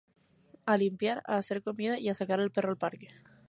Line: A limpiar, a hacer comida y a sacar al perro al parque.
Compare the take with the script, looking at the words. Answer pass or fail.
pass